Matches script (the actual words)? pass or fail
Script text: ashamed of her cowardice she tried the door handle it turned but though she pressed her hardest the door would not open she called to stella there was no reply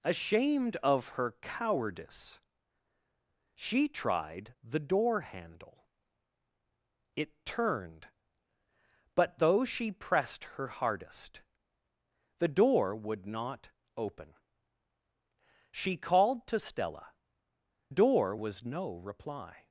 fail